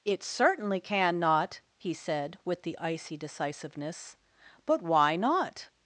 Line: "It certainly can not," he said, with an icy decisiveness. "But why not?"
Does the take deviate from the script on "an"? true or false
true